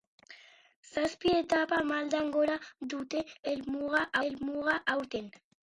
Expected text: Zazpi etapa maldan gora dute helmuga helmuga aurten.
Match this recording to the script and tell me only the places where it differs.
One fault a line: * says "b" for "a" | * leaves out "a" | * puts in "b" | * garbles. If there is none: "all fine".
all fine